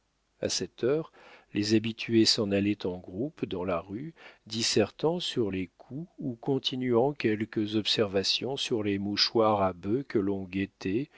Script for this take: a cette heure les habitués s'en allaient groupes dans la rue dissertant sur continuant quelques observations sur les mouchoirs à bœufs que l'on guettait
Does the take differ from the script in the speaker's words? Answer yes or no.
yes